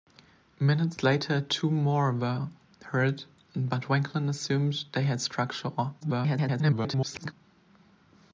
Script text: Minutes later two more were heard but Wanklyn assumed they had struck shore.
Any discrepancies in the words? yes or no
yes